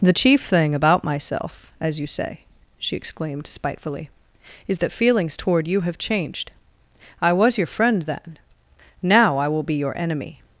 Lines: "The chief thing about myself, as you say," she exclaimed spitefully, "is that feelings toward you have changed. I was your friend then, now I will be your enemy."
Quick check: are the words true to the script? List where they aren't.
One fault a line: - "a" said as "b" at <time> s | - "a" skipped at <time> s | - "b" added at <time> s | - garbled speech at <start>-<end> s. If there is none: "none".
none